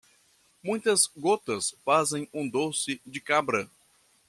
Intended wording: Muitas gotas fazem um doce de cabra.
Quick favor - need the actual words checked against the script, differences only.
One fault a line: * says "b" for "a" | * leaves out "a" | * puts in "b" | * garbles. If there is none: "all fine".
all fine